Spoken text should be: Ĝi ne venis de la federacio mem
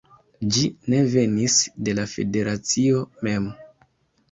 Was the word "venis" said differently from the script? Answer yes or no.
no